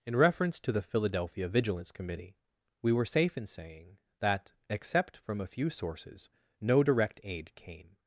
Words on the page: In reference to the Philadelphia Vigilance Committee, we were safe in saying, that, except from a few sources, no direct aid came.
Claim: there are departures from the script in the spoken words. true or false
false